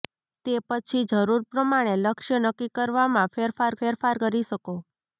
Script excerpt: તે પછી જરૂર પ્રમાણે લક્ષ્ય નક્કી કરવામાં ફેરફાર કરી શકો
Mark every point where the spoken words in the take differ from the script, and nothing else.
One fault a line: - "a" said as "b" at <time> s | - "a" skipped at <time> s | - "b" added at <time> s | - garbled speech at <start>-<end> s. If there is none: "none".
- "ફેરફાર" added at 3.8 s